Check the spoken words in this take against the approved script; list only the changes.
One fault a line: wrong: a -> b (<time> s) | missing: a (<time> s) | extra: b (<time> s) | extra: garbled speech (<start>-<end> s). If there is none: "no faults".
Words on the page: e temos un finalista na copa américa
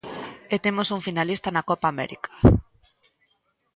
no faults